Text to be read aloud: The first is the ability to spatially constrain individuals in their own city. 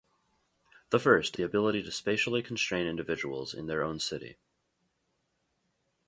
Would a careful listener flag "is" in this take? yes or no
yes